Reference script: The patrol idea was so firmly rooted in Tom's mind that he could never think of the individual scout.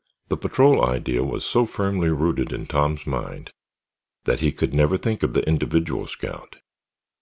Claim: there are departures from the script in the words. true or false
false